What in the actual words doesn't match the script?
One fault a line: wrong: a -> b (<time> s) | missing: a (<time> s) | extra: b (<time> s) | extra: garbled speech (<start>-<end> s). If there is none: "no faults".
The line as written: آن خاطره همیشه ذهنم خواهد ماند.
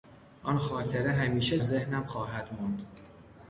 no faults